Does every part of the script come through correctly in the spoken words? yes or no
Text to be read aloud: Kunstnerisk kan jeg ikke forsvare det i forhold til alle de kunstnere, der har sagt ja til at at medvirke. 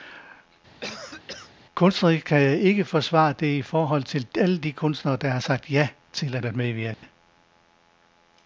yes